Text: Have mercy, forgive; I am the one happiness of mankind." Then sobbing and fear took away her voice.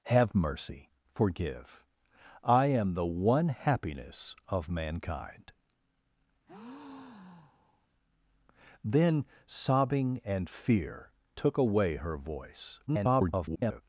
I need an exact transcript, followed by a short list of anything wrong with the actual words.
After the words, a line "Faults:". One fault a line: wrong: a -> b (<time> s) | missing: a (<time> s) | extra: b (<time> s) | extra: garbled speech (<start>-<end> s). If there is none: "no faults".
Have mercy, forgive; I am the one happiness of mankind." Then sobbing and fear took away her voice. [garbled]
Faults:
extra: garbled speech (12.9-13.8 s)